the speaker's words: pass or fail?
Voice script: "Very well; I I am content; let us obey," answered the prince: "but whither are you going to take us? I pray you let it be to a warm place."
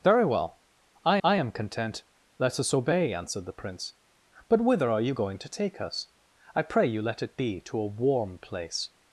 pass